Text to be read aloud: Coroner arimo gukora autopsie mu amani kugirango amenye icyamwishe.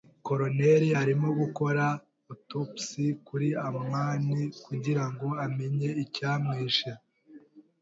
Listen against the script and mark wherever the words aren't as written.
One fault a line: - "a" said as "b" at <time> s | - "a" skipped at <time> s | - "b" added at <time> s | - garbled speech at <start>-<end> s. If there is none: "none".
- "mu" said as "kuri" at 3.3 s